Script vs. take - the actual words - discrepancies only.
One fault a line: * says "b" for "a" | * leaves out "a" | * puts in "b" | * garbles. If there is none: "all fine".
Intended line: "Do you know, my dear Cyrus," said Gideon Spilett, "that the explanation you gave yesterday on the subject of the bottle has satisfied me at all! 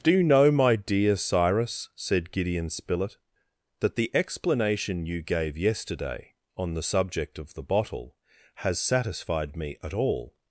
all fine